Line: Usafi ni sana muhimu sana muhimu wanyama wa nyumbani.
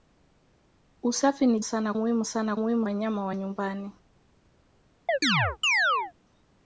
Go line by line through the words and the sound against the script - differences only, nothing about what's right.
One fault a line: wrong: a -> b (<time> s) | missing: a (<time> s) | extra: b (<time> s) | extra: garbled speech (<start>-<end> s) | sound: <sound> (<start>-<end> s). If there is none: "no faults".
sound: chirp (5.1-6.1 s)